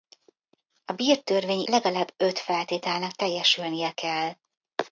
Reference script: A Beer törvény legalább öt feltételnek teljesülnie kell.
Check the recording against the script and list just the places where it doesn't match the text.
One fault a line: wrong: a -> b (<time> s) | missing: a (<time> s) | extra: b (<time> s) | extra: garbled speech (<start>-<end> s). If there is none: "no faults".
no faults